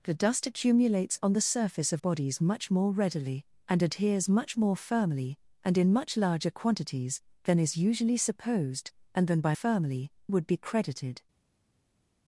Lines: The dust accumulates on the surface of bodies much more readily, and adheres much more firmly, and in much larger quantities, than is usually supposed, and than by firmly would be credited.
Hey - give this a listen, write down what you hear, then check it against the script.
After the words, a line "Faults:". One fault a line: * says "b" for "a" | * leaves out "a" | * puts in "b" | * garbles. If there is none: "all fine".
The dust accumulates on the surface of bodies much more readily, and adheres much more firmly, and in much larger quantities, than is usually supposed, and than by firmly would be credited.
Faults:
all fine